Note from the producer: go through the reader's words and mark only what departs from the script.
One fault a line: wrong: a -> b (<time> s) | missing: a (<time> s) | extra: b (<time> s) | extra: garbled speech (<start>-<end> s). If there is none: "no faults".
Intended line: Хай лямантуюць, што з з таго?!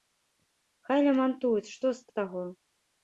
no faults